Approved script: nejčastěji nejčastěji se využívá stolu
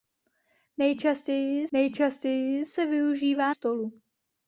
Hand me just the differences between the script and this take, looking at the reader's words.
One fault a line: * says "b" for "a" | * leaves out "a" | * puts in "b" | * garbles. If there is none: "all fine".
all fine